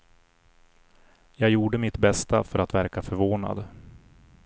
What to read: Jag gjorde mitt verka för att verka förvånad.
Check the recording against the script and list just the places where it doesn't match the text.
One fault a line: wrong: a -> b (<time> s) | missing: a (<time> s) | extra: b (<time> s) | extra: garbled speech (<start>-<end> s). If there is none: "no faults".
wrong: verka -> bästa (2.0 s)